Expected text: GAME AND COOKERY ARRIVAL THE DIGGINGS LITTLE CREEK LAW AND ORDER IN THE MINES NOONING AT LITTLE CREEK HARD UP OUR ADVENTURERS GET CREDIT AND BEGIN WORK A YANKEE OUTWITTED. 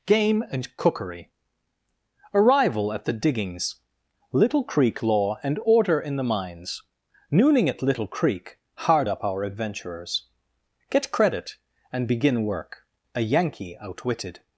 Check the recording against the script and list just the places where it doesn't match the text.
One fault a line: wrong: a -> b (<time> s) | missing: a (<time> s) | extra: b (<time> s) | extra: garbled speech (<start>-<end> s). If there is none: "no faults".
extra: AT (2.9 s)